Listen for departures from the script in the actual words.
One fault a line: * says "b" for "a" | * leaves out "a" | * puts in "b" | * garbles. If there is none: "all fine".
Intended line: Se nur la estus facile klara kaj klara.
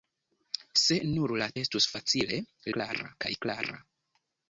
all fine